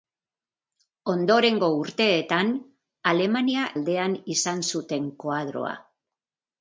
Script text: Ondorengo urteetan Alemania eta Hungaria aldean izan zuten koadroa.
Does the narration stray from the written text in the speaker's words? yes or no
yes